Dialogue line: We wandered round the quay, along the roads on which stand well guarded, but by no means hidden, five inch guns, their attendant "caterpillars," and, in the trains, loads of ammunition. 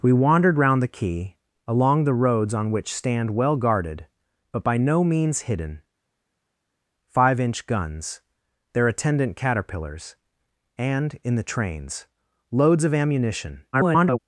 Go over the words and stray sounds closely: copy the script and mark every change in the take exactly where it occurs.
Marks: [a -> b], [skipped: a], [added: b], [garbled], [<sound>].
We wandered round the quay, along the roads on which stand well guarded, but by no means hidden, five inch guns, their attendant "caterpillars," and, in the trains, loads of ammunition. [garbled]